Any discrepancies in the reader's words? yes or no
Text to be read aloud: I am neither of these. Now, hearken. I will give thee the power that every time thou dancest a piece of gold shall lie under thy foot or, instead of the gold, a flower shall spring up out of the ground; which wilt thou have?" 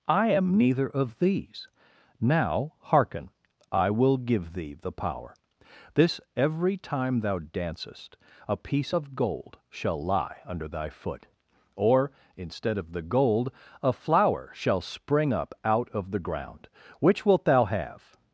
yes